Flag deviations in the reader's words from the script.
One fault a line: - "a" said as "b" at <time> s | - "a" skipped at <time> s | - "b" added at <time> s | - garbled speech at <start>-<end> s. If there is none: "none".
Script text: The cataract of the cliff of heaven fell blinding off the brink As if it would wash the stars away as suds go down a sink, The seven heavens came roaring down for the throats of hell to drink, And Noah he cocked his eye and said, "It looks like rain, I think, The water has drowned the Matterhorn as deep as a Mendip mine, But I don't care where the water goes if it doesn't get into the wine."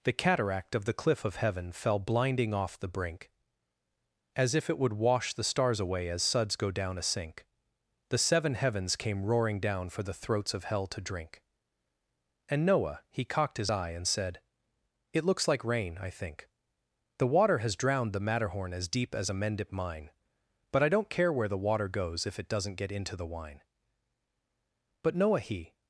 - "But Noah he" added at 25.0 s